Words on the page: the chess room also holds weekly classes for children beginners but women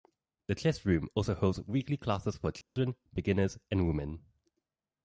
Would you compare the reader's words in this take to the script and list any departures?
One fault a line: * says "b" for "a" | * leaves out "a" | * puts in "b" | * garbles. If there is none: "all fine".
* says "and" for "but"